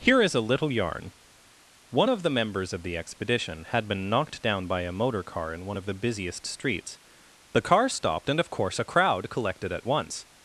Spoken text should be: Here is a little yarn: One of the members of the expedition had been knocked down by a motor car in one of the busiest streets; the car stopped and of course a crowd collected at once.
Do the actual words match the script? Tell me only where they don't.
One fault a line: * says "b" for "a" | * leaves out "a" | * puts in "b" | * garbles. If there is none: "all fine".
all fine